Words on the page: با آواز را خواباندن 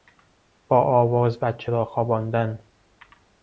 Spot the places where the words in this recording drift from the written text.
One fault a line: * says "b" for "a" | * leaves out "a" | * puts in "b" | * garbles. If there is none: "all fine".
* puts in "بچه"